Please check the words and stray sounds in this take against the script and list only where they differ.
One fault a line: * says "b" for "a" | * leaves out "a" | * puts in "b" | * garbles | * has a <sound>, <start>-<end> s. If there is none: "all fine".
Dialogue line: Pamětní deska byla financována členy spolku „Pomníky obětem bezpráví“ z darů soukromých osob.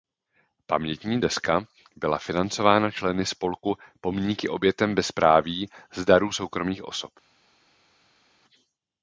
all fine